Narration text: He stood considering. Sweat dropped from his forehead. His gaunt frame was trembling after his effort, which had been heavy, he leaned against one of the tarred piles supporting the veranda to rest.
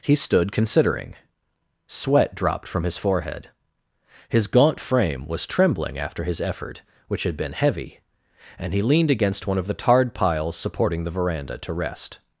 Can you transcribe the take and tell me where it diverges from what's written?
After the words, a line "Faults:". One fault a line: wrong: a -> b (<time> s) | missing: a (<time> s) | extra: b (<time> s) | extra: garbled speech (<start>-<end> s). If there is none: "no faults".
He stood considering. Sweat dropped from his forehead. His gaunt frame was trembling after his effort, which had been heavy, and he leaned against one of the tarred piles supporting the veranda to rest.
Faults:
extra: and (8.6 s)